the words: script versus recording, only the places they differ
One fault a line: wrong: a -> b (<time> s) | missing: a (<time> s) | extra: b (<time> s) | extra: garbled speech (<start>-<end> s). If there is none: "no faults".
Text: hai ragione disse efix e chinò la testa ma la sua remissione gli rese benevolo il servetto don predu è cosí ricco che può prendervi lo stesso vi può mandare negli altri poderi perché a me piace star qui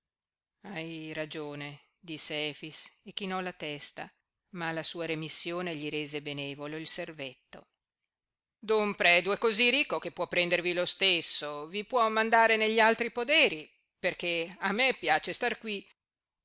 no faults